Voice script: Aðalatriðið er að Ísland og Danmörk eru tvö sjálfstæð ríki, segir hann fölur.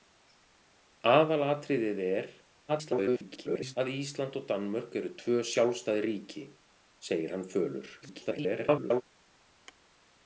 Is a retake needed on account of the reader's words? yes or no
yes